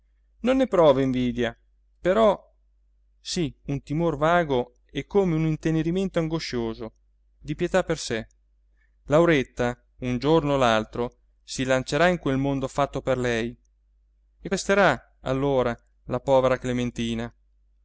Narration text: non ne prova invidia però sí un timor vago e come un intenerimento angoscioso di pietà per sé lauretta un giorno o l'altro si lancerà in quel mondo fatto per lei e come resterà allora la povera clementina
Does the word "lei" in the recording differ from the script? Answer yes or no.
no